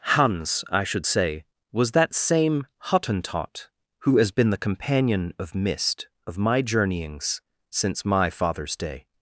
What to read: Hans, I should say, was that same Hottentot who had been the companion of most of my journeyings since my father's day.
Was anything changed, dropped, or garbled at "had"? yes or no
yes